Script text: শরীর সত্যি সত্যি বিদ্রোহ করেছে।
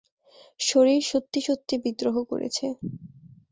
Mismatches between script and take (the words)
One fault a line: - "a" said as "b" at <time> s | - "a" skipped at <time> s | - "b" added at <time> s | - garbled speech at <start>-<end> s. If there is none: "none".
none